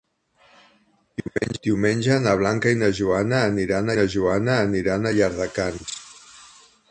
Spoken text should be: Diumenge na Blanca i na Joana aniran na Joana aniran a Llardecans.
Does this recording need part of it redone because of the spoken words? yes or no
no